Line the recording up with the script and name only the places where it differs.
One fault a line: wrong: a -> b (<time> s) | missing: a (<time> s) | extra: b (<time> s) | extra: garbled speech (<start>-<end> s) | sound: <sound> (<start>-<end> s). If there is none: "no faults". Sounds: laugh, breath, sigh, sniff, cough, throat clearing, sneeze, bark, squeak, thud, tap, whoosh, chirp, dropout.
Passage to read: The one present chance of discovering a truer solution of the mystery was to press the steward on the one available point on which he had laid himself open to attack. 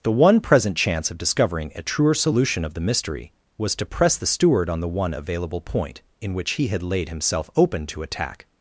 wrong: on -> in (6.2 s)